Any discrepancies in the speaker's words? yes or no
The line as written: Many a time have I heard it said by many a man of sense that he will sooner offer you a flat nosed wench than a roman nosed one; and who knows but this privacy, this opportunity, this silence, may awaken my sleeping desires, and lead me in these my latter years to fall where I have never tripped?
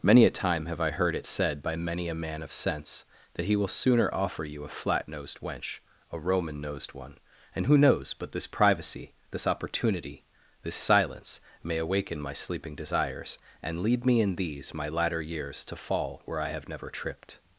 yes